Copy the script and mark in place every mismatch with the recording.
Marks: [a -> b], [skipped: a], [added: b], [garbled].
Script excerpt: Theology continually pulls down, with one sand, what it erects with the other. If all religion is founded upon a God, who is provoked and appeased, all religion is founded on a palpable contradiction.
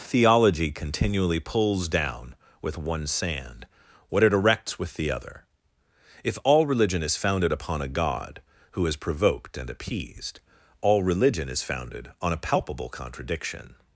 Theology continually pulls down, with one sand, what it erects with the other. If all religion is founded upon a God, who is provoked and appeased, all religion is founded on a palpable contradiction.